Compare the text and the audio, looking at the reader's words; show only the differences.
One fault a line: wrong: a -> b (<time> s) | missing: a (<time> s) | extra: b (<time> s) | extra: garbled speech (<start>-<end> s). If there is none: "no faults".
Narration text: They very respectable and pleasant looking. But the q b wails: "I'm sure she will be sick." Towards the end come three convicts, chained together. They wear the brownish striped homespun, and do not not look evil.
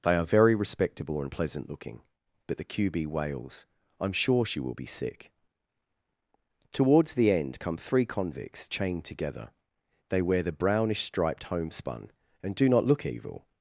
extra: are (0.1 s)
missing: not (12.8 s)